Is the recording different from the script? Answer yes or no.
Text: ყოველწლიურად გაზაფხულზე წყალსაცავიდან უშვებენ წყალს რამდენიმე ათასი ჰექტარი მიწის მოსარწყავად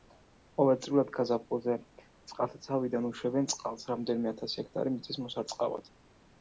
no